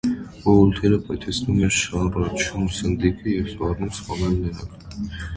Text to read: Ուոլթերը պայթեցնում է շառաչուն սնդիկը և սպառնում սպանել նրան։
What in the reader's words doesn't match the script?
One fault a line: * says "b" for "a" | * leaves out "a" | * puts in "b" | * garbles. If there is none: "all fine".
all fine